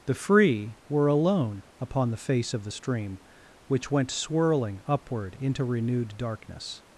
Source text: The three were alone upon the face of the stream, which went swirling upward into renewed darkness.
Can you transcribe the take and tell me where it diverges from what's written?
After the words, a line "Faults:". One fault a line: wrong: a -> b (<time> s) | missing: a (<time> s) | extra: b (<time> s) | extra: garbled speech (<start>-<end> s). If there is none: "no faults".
The free were alone upon the face of the stream, which went swirling upward into renewed darkness.
Faults:
wrong: three -> free (0.1 s)